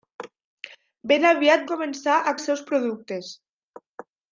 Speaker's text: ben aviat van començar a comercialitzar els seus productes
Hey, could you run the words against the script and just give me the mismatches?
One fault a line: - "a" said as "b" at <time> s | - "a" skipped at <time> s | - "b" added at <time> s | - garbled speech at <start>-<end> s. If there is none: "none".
- "van" skipped at 1.7 s
- "comercialitzar" skipped at 2.3 s